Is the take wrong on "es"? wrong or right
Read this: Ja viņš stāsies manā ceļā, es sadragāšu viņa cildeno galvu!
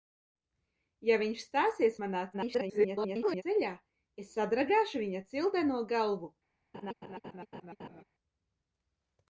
right